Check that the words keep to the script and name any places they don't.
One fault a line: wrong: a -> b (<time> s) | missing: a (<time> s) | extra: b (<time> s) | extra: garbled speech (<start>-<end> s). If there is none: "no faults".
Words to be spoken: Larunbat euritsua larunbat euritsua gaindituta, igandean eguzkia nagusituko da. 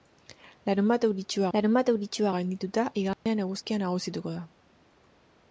no faults